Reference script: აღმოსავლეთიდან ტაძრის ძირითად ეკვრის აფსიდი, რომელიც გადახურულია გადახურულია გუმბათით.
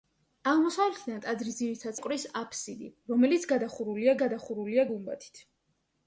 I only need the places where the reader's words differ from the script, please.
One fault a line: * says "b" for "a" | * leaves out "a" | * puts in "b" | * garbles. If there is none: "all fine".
all fine